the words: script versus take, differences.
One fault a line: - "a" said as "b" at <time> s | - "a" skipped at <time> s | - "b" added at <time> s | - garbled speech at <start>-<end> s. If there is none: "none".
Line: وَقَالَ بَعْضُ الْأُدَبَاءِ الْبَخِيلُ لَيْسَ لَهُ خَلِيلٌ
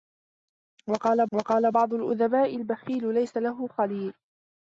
- "وَقَالَ" added at 1.3 s